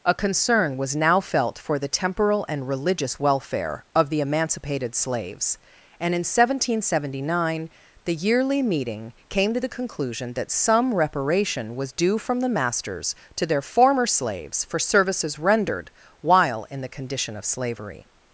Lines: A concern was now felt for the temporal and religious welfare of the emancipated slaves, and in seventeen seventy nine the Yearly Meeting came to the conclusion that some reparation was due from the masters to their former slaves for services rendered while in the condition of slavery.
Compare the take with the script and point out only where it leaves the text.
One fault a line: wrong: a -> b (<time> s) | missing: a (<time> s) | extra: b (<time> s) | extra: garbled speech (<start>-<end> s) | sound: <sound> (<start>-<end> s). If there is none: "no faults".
no faults